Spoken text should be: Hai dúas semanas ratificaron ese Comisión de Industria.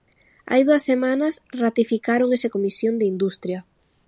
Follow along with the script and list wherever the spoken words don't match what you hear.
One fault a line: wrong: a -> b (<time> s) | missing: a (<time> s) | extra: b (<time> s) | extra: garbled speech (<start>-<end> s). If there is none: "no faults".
no faults